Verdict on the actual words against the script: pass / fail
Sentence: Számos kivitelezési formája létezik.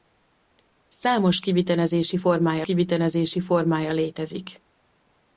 fail